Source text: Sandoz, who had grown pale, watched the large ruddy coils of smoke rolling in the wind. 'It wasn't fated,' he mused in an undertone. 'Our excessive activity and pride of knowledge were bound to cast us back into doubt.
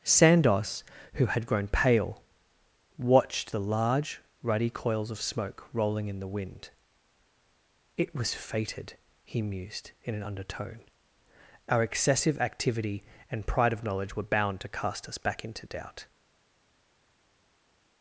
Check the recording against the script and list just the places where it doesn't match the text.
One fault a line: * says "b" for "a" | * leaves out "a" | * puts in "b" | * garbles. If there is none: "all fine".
* says "was" for "wasn't"